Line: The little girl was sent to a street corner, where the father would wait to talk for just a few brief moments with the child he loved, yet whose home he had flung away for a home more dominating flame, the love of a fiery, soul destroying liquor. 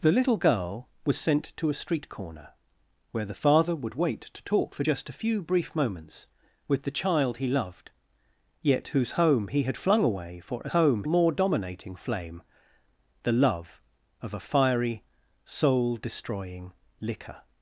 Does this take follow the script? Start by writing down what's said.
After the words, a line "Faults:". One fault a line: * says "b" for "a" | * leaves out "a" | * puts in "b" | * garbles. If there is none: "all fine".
The little girl was sent to a street corner, where the father would wait to talk for just a few brief moments with the child he loved, yet whose home he had flung away for a home more dominating flame, the love of a fiery, soul destroying liquor.
Faults:
all fine